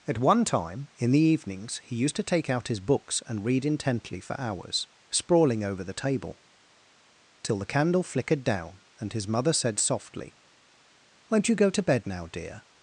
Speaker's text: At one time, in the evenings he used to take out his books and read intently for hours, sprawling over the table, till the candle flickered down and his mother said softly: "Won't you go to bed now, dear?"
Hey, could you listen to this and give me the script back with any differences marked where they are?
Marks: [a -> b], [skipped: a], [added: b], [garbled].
At one time, in the evenings he used to take out his books and read intently for hours, sprawling over the table, till the candle flickered down and his mother said softly: "Won't you go to bed now, dear?"